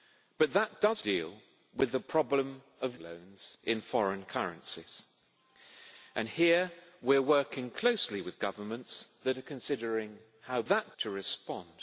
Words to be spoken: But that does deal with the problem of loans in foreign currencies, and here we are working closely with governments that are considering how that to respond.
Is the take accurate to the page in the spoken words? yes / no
yes